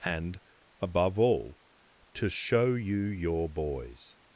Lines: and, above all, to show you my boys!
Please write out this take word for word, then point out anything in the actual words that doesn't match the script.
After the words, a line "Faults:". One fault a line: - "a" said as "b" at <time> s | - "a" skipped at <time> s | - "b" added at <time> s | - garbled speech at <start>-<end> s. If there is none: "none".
and, above all, to show you your boys!
Faults:
- "my" said as "your" at 3.0 s